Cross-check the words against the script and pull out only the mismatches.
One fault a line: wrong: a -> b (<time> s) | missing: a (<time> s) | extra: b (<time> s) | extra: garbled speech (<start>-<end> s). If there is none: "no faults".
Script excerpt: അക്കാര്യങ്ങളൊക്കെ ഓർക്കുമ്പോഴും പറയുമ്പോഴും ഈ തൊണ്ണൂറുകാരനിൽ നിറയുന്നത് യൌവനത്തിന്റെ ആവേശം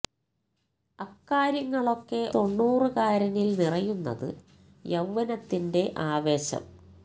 missing: ഓർക്കുമ്പോഴും പറയുമ്പോഴും ഈ (2.2 s)